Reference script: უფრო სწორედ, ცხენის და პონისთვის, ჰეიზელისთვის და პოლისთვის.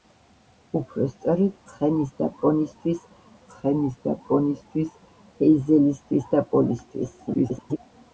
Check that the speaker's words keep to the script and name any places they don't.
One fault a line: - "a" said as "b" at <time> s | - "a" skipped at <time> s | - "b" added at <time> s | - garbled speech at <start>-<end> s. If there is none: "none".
- "ცხენის და პონისთვის" added at 3.5 s
- garbled speech at 7.3-7.8 s